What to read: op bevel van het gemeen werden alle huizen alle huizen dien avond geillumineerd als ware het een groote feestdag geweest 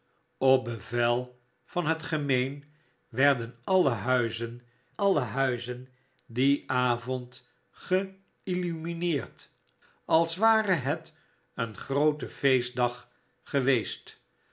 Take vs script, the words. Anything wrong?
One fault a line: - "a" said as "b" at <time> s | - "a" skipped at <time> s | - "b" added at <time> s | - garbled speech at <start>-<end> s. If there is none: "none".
none